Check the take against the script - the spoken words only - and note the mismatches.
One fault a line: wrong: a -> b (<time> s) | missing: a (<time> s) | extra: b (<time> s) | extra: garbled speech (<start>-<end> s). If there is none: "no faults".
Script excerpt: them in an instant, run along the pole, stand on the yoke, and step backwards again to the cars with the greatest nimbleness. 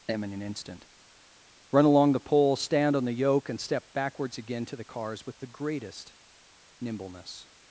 no faults